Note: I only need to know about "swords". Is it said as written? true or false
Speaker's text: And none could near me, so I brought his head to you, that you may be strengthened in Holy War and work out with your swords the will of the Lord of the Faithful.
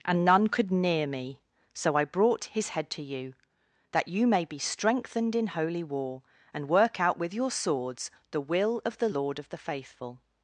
true